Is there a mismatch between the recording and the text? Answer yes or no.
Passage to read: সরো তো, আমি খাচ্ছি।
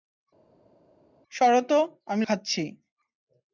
no